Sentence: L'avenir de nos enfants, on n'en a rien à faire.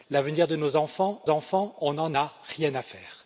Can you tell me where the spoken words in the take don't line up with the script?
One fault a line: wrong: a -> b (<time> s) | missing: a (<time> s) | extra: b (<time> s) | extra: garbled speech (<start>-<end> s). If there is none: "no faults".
extra: enfants (1.3 s)